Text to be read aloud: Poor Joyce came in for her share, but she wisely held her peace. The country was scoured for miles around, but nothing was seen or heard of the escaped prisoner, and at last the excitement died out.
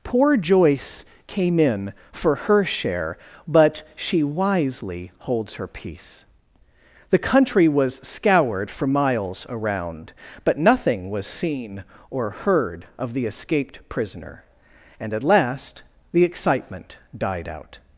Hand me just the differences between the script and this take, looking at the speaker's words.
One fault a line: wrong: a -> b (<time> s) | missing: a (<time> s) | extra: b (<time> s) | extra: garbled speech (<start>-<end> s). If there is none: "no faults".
wrong: held -> holds (5.2 s)